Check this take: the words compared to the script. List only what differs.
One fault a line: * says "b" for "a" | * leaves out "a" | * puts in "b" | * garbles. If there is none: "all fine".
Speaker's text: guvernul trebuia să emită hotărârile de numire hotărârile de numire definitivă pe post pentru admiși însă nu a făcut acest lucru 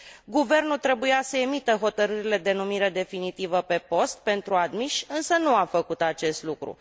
* leaves out "hotărârile de numire"